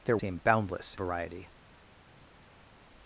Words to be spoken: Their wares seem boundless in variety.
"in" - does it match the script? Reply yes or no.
no